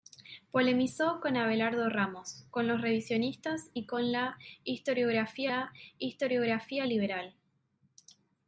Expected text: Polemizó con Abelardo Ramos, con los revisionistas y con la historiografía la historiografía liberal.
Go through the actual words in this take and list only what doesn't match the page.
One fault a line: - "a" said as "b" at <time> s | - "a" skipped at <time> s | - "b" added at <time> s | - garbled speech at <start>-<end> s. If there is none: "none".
none